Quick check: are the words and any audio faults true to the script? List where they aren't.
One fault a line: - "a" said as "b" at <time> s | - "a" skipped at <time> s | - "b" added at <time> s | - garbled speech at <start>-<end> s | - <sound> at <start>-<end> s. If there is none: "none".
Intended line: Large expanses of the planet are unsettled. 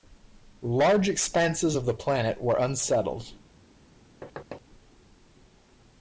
- "are" said as "were" at 2.4 s
- thud at 4.2-4.6 s